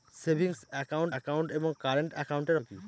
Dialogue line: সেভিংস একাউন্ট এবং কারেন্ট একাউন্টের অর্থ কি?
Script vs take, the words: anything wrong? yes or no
yes